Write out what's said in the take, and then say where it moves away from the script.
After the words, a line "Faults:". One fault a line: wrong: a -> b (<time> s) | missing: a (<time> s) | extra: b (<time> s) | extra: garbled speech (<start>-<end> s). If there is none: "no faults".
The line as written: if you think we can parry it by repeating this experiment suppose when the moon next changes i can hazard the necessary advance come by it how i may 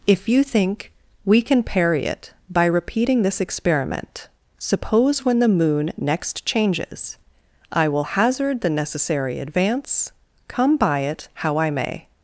if you think we can parry it by repeating this experiment suppose when the moon next changes i will hazard the necessary advance come by it how i may
Faults:
wrong: can -> will (7.9 s)